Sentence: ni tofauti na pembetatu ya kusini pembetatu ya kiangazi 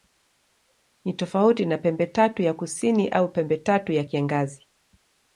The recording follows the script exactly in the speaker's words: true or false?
false